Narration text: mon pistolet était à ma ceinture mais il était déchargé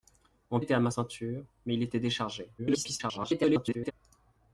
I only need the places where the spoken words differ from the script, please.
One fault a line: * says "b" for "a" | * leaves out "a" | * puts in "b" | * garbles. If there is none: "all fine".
* leaves out "pistolet"
* garbles